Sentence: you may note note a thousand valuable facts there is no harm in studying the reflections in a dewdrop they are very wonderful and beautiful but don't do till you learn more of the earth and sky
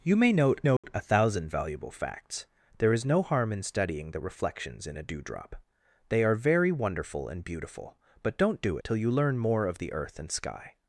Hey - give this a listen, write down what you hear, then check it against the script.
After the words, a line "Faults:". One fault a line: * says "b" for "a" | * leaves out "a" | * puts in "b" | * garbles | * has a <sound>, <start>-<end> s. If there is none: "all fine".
you may note note a thousand valuable facts there is no harm in studying the reflections in a dewdrop they are very wonderful and beautiful but don't do till you learn more of the earth and sky
Faults:
* has a dropout, 0.8-0.8 s